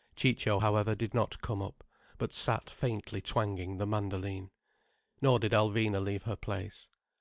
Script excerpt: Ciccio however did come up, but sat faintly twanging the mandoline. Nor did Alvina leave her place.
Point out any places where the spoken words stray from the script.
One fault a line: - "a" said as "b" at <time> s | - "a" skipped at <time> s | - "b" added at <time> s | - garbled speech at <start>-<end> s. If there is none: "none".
- "not" added at 1.1 s